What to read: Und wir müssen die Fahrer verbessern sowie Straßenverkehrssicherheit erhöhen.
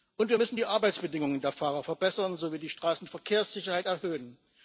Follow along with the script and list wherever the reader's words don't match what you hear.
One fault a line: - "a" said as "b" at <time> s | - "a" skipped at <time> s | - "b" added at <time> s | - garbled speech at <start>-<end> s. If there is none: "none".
- "Arbeitsbedingungen der" added at 0.6 s
- "die" added at 2.6 s